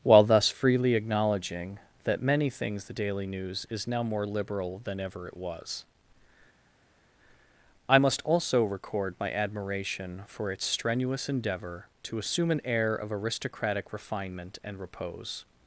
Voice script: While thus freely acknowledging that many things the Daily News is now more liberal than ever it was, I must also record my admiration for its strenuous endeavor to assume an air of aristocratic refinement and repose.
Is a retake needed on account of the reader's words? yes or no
no